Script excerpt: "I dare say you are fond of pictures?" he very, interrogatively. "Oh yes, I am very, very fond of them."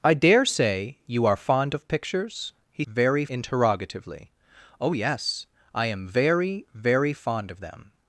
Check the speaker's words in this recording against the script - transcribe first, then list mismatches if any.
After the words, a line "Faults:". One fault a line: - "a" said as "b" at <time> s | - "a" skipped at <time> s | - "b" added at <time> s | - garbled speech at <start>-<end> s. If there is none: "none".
"I dare say you are fond of pictures?" he very, interrogatively. "Oh yes, I am very, very fond of them."
Faults:
none